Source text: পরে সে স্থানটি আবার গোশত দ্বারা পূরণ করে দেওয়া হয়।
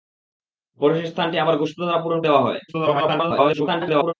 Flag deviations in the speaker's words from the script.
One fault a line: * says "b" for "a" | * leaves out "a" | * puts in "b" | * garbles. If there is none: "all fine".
* leaves out "করে"
* garbles